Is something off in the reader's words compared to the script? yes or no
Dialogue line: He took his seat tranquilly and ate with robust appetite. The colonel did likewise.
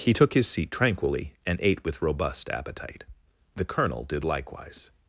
no